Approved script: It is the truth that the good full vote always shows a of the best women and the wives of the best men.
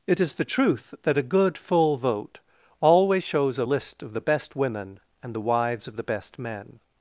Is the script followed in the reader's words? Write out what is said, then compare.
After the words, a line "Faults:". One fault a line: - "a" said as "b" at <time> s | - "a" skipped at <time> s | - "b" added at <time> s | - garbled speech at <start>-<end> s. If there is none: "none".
It is the truth that a good full vote always shows a list of the best women and the wives of the best men.
Faults:
- "the" said as "a" at 1.2 s
- "list" added at 3.6 s